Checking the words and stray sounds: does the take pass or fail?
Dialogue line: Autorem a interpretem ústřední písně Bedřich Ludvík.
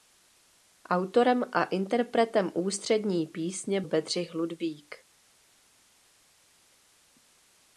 pass